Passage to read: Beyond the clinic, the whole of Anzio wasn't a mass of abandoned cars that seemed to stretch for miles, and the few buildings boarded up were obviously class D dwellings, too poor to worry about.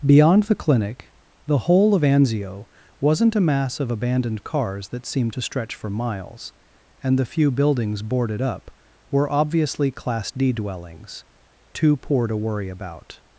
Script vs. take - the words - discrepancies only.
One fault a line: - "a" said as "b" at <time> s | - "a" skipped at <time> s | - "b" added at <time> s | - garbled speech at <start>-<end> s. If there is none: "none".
none